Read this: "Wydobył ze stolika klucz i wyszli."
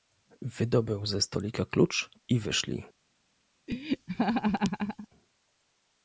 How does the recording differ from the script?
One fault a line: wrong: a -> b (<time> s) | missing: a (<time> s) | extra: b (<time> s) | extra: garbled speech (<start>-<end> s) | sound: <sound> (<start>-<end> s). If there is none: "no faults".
sound: laugh (3.7-5.1 s)